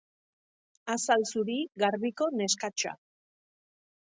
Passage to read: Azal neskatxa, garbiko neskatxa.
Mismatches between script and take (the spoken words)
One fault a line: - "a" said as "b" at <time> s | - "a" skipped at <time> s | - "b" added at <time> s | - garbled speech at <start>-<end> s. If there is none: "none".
- "neskatxa" said as "zuri" at 1.3 s